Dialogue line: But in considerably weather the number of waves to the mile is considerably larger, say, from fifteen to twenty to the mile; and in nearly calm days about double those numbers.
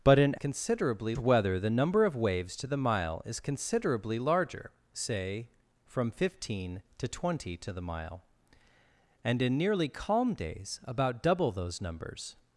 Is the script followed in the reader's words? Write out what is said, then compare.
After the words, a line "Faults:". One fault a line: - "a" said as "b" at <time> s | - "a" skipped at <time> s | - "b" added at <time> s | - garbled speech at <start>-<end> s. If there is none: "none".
But in considerably weather the number of waves to the mile is considerably larger, say, from fifteen to twenty to the mile; and in nearly calm days about double those numbers.
Faults:
none